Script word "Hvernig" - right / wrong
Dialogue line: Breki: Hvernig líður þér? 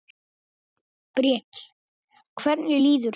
right